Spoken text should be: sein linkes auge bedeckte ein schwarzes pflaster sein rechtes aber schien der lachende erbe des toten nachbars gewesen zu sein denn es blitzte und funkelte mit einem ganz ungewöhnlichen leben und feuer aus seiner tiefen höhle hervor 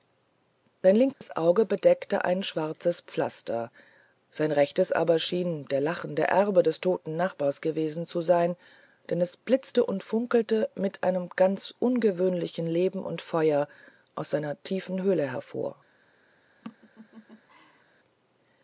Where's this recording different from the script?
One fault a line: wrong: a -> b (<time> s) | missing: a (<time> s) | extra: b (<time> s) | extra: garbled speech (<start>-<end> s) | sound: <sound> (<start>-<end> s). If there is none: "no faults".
sound: dropout (1.1-1.2 s)
sound: laugh (16.6-17.8 s)